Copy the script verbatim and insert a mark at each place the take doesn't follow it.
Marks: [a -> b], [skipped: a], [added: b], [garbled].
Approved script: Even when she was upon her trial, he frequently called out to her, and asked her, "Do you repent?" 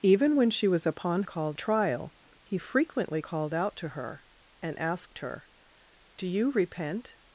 Even when she was upon [her -> called] trial, he frequently called out to her, and asked her, "Do you repent?"